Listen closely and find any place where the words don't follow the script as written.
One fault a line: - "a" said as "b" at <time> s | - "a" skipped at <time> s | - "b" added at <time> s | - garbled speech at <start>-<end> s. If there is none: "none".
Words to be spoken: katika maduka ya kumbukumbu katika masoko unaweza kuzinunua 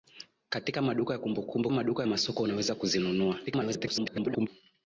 - "katika" said as "maduka" at 1.7 s
- garbled speech at 3.5-4.5 s